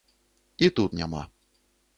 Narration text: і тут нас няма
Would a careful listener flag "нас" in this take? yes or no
yes